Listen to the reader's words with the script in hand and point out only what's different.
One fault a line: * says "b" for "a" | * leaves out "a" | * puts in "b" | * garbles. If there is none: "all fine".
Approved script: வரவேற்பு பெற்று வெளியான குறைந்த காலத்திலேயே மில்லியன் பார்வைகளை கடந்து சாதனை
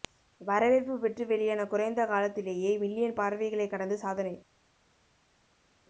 all fine